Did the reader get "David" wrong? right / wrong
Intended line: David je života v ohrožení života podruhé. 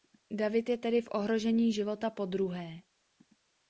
right